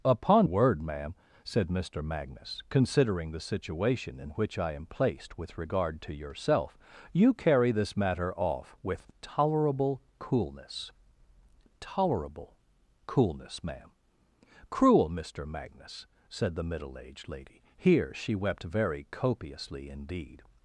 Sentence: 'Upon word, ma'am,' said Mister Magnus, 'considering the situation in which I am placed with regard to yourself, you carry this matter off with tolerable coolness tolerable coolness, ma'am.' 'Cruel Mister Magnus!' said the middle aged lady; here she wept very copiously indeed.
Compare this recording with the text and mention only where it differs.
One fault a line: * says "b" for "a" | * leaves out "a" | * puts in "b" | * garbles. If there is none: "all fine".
all fine